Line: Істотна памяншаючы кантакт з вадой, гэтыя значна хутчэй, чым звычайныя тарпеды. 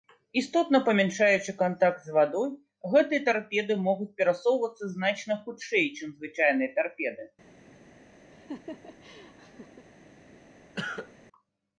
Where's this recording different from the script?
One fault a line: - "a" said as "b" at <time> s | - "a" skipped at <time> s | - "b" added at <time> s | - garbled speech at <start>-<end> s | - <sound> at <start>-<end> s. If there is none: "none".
- "тарпеды могуць перасоўвацца" added at 3.3 s
- laugh at 8.3-9.9 s
- cough at 10.7-11.1 s